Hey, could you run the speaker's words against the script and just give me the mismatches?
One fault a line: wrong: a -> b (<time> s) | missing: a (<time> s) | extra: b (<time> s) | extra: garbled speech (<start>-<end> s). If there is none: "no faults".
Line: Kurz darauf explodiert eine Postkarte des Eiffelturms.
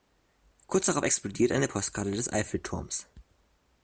no faults